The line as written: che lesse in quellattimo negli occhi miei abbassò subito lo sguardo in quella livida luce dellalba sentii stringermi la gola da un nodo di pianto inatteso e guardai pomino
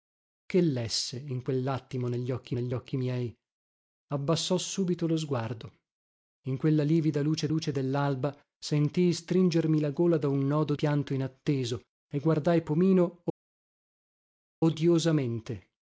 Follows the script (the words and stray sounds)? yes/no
no